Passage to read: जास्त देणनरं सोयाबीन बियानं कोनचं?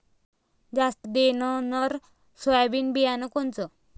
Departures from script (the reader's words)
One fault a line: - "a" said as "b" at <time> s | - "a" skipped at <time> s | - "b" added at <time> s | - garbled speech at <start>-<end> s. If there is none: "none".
none